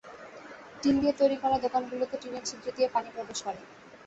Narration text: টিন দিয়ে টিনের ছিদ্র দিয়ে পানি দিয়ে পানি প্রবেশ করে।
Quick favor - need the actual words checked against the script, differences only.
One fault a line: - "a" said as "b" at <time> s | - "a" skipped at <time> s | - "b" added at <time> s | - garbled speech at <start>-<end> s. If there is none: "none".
- "তৈরি করা দোকানগুলোতে" added at 1.2 s
- "দিয়ে পানি" skipped at 3.1 s